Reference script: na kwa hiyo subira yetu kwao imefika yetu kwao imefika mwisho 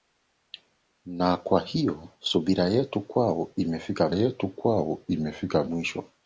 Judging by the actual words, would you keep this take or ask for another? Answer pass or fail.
pass